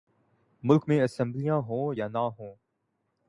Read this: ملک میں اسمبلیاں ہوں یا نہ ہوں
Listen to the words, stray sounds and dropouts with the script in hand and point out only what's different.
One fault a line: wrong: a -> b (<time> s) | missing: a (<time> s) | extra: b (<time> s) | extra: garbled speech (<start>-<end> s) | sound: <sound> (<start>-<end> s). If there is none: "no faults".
no faults